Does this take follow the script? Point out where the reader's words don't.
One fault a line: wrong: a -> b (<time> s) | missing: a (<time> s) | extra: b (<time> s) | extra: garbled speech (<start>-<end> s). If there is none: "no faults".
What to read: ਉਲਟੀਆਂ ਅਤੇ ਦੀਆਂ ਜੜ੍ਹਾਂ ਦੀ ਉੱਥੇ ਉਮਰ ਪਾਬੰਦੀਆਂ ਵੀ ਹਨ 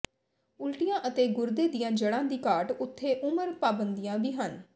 extra: ਗੁਰਦੇ (1.3 s)
extra: ਘਾਟ (2.5 s)